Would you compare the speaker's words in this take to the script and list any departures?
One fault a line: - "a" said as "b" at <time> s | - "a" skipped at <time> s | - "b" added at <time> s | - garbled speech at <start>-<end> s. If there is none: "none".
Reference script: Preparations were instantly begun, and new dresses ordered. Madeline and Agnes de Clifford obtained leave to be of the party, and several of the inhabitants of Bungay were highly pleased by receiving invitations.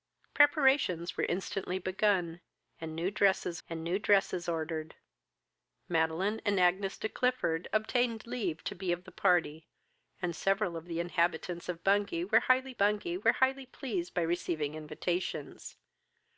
- "and new dresses" added at 3.7 s
- "Bungay were highly" added at 12.8 s